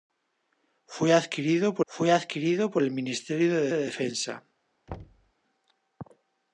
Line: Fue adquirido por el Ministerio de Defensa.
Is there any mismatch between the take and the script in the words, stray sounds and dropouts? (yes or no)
yes